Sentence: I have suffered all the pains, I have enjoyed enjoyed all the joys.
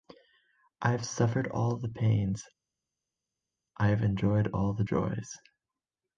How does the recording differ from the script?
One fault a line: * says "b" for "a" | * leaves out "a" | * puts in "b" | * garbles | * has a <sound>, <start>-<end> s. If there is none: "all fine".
* leaves out "enjoyed"